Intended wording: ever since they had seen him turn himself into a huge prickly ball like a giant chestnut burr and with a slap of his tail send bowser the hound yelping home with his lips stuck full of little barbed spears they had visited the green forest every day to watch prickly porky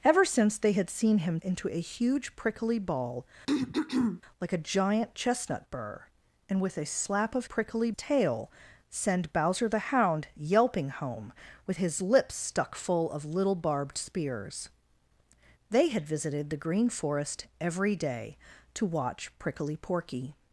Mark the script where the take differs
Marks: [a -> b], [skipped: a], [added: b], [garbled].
ever since they had seen him [skipped: turn himself] into a huge prickly ball like a giant chestnut burr and with a slap of [his -> prickly] tail send bowser the hound yelping home with his lips stuck full of little barbed spears they had visited the green forest every day to watch prickly porky